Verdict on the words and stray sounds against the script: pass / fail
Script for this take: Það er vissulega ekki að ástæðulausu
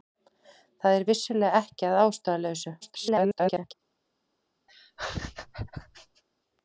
fail